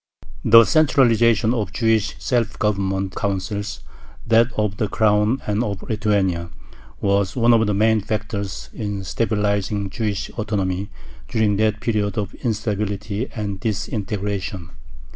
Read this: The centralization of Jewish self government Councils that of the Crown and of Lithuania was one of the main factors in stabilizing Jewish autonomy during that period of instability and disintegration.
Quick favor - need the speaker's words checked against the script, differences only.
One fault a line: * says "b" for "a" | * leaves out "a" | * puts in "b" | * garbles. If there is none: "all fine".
all fine